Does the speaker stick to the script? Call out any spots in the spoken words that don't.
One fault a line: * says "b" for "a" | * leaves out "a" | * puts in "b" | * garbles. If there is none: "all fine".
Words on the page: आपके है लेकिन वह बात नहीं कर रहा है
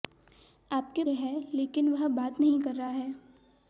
all fine